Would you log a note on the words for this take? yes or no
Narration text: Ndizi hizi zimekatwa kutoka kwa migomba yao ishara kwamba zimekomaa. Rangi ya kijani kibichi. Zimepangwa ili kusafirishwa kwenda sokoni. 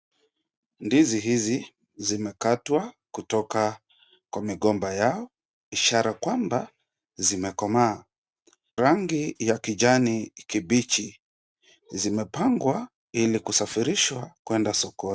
no